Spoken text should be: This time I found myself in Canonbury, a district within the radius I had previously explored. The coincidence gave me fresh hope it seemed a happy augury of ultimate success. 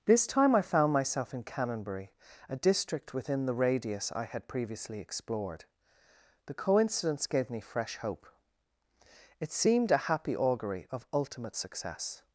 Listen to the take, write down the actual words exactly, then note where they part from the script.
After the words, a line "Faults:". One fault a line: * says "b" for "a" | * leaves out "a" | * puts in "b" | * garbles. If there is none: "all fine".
This time I found myself in Canonbury, a district within the radius I had previously explored. The coincidence gave me fresh hope it seemed a happy augury of ultimate success.
Faults:
all fine